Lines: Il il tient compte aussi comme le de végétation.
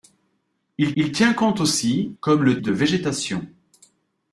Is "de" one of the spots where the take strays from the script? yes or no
no